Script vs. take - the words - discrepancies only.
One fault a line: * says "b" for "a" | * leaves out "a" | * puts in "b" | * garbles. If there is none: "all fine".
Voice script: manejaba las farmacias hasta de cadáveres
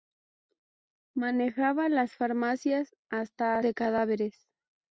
all fine